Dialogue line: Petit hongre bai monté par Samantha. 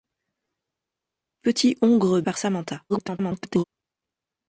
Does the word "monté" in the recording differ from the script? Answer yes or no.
yes